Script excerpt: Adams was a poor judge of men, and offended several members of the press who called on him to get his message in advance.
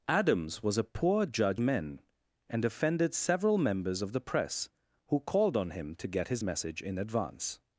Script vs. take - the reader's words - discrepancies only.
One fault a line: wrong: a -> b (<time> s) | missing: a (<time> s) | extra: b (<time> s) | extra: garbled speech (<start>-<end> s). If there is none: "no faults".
missing: of (1.6 s)